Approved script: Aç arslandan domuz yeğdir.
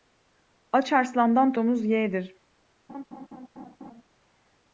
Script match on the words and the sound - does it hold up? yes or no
no